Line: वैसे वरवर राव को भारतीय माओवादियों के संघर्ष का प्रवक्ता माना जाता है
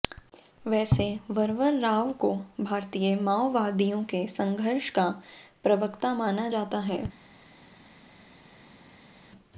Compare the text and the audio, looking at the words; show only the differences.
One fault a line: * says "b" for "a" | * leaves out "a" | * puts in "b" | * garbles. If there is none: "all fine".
all fine